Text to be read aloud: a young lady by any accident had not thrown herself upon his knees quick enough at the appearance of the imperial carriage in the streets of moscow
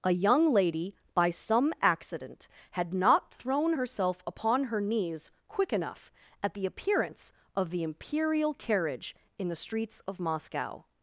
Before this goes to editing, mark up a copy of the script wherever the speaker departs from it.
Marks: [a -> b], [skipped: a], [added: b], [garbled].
a young lady by [any -> some] accident had not thrown herself upon [his -> her] knees quick enough at the appearance of the imperial carriage in the streets of moscow